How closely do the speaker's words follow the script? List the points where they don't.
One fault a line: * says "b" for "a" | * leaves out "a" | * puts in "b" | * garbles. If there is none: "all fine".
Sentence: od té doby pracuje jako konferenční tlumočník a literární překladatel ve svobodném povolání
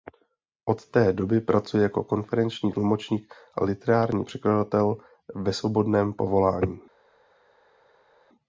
all fine